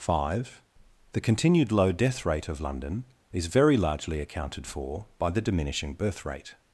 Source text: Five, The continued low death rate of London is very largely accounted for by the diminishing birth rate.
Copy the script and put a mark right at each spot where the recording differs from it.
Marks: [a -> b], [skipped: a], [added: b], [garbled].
Five, The continued low death rate of London is very largely accounted for by the diminishing birth rate.